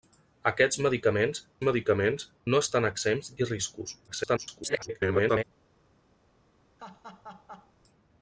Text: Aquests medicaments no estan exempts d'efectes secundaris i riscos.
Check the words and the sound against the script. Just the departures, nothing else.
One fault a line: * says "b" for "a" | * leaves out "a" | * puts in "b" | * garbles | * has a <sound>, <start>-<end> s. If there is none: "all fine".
* puts in "medicaments"
* leaves out "d'efectes secundaris"
* garbles
* has a laugh, 6.8-7.7 s